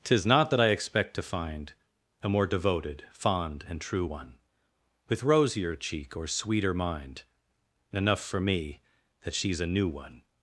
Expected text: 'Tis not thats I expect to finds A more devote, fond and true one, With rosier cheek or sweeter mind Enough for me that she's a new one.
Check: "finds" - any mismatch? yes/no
yes